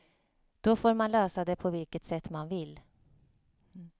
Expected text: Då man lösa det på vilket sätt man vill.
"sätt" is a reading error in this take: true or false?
false